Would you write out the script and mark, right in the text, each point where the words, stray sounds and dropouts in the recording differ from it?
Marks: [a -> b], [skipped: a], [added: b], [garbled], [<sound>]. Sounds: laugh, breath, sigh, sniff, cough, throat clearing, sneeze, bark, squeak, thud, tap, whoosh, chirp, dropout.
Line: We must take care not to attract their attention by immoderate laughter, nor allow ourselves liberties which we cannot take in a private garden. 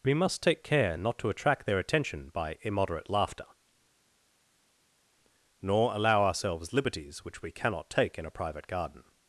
We must take care not to attract their attention by immoderate laughter, nor allow ourselves liberties which we cannot take in a private garden.